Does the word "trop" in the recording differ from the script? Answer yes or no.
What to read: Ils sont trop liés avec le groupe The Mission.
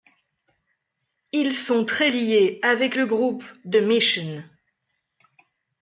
yes